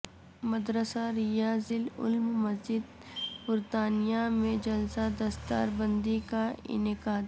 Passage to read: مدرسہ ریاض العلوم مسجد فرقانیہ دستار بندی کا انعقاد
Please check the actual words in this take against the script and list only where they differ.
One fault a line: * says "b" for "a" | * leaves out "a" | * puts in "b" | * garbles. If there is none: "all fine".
* puts in "میں جلسہ"